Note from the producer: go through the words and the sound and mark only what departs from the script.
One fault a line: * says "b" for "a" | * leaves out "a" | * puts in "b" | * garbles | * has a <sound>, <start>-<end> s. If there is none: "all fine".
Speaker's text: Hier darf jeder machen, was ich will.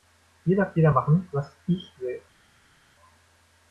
all fine